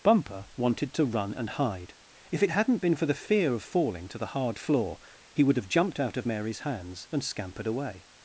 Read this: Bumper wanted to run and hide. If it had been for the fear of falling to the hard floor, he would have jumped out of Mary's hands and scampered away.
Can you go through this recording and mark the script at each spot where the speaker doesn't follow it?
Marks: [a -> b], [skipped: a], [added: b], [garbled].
Bumper wanted to run and hide. If it [had -> hadn't] been for the fear of falling to the hard floor, he would have jumped out of Mary's hands and scampered away.